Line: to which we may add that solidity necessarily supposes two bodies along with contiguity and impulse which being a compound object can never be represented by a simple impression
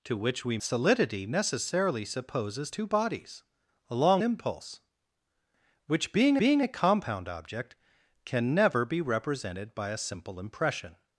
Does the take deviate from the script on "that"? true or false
true